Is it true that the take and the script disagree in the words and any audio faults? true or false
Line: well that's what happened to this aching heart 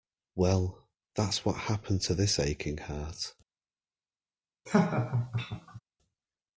true